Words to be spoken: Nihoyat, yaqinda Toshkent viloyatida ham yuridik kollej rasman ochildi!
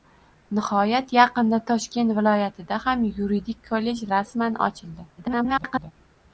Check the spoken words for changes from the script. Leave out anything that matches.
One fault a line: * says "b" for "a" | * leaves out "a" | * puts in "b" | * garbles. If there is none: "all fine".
* garbles